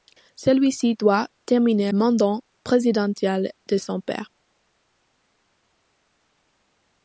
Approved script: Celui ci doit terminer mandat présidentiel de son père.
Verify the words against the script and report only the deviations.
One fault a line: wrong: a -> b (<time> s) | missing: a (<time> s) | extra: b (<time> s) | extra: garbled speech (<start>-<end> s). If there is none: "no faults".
no faults